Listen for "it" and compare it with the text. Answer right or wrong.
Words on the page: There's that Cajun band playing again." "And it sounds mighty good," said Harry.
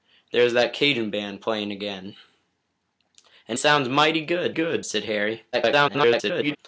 wrong